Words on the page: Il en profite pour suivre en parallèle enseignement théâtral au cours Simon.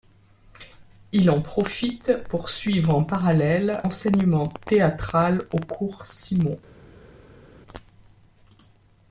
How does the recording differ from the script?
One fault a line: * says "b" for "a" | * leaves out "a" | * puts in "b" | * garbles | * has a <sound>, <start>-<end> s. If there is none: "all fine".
all fine